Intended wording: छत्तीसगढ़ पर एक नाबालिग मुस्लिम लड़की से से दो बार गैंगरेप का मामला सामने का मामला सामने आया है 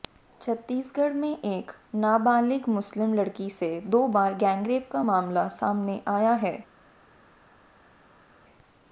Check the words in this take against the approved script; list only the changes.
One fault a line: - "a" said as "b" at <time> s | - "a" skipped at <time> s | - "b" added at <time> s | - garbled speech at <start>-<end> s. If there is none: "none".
- "पर" said as "में" at 1.1 s
- "से" skipped at 3.7 s
- "का मामला सामने" skipped at 6.0 s